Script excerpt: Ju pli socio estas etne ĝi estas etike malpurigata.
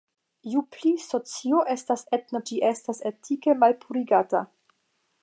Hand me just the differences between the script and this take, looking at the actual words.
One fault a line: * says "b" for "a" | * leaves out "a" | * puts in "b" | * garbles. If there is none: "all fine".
all fine